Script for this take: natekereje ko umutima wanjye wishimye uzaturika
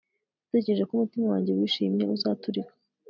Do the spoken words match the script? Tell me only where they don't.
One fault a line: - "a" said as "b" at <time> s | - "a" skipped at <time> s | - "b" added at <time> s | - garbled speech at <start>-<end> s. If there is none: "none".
none